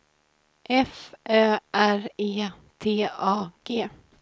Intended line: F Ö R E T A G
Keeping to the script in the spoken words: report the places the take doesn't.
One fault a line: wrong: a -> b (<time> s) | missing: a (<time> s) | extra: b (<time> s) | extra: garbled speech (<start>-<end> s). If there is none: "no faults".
no faults